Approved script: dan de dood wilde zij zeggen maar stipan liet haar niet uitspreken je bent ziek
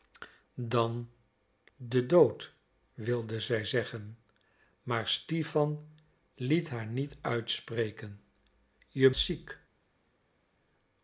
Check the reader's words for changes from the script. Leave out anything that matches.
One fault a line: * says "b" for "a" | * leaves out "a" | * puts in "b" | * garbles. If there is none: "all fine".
* leaves out "bent"